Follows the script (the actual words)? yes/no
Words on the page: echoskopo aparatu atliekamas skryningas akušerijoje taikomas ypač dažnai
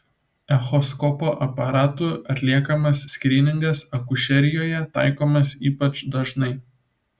yes